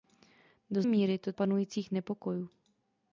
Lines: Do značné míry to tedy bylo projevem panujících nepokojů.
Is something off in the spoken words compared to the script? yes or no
yes